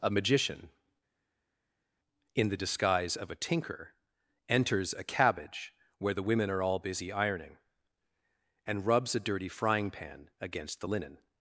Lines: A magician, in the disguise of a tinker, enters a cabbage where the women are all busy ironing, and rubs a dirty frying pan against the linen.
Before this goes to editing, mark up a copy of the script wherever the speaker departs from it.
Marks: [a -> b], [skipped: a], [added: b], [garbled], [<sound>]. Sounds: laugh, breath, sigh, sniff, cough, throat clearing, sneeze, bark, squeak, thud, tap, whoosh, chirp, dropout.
A magician, in the disguise of a tinker, enters a cabbage where the women are all busy ironing, and rubs a dirty frying pan against the linen.